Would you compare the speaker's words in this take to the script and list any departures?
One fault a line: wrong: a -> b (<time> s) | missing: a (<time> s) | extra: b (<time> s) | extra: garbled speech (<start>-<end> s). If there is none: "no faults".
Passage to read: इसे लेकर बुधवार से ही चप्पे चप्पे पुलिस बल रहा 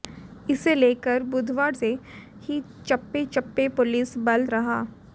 no faults